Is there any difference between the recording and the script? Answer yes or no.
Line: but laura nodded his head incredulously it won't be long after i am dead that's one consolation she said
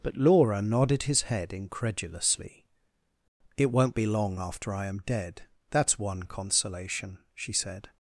no